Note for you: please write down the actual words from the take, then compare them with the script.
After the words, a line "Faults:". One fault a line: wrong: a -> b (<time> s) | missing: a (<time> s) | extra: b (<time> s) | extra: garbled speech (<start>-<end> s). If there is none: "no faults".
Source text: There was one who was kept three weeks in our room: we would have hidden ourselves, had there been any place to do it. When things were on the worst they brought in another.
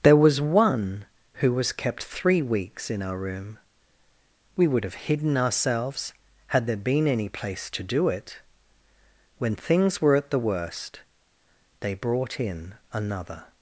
There was one who was kept three weeks in our room: we would have hidden ourselves, had there been any place to do it. When things were at the worst they brought in another.
Faults:
wrong: on -> at (10.2 s)